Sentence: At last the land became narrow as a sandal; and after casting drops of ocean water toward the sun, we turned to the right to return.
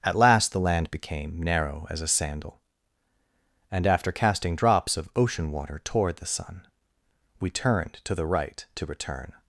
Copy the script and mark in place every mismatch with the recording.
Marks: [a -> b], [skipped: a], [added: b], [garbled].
At last the land became narrow as a sandal; and after casting drops of ocean water toward the sun, we turned to the right to return.